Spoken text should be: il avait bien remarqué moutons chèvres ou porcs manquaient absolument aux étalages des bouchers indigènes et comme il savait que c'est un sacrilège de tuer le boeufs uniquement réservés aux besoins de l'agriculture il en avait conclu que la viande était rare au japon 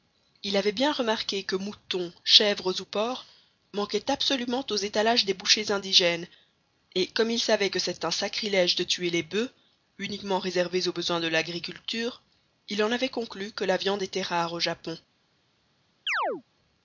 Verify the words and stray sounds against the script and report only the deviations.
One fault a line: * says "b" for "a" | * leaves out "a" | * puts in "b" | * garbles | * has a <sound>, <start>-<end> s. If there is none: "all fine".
* puts in "que"
* says "les" for "le"
* has a chirp, 16.1-16.4 s